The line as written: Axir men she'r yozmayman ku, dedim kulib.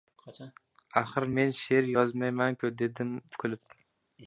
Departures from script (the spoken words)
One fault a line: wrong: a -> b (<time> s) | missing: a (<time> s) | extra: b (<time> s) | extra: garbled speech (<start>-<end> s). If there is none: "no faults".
no faults